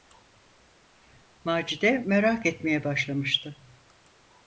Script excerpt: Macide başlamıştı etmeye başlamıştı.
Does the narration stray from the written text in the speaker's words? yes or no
yes